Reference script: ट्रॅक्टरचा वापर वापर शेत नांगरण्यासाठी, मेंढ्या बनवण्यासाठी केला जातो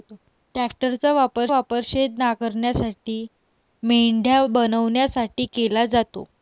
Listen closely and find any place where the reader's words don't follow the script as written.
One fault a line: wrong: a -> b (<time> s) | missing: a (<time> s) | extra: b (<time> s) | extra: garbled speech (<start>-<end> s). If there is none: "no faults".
no faults